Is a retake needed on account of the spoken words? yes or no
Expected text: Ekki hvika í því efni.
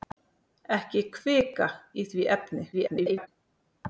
yes